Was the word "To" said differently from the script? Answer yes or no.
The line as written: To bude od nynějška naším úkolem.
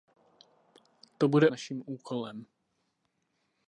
no